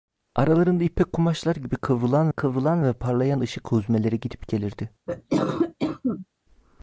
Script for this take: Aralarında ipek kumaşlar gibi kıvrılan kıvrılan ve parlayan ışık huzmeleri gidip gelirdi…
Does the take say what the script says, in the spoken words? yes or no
yes